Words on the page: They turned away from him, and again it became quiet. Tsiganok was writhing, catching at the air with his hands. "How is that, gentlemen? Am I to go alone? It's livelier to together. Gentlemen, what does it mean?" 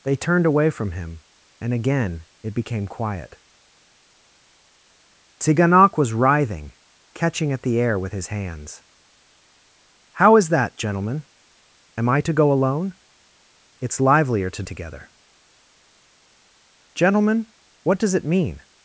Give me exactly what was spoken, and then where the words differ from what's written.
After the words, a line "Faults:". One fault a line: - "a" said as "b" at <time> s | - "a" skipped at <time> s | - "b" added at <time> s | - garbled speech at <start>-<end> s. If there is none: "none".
They turned away from him, and again it became quiet. Tsiganok was writhing, catching at the air with his hands. "How is that, gentlemen? Am I to go alone? It's livelier to together. Gentlemen, what does it mean?"
Faults:
none